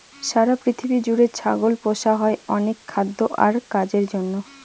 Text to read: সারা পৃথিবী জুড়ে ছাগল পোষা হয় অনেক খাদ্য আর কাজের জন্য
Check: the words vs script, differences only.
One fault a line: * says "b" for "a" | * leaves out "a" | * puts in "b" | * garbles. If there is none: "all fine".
all fine